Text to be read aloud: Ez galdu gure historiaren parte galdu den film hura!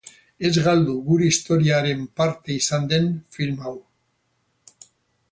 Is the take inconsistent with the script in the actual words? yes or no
yes